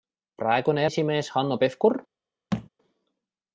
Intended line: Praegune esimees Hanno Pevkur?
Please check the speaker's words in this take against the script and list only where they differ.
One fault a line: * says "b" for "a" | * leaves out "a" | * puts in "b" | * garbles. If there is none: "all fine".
all fine